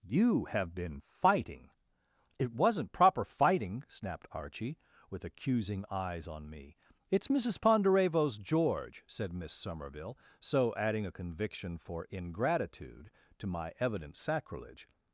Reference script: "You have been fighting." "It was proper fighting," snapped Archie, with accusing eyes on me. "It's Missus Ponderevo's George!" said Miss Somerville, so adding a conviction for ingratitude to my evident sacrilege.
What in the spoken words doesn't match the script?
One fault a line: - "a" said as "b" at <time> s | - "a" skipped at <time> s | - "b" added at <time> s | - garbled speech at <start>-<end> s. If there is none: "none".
- "was" said as "wasn't" at 2.5 s